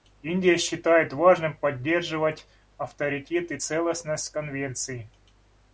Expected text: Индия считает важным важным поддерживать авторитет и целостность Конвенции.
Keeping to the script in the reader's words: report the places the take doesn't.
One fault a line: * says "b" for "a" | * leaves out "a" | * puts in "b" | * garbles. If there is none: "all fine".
* leaves out "важным"